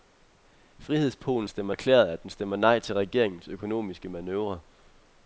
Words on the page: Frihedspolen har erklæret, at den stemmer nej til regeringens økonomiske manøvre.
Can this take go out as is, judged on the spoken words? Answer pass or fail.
fail